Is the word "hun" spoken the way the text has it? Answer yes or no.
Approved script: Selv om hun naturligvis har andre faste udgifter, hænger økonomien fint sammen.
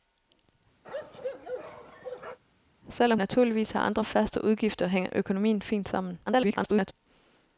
no